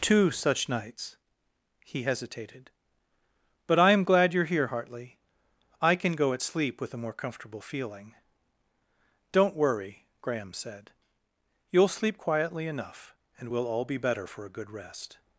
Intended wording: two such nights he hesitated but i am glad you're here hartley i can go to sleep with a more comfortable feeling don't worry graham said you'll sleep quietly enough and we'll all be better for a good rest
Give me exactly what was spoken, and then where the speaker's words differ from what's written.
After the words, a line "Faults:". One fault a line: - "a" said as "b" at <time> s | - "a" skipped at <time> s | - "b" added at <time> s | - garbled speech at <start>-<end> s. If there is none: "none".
two such nights he hesitated but i am glad you're here hartley i can go at sleep with a more comfortable feeling don't worry graham said you'll sleep quietly enough and we'll all be better for a good rest
Faults:
- "to" said as "at" at 6.3 s